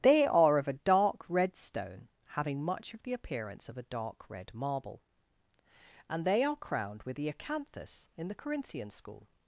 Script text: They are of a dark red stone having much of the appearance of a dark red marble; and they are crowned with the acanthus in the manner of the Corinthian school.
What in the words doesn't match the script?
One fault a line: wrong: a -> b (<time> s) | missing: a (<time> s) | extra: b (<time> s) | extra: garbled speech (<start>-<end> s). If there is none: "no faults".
missing: manner of the (8.3 s)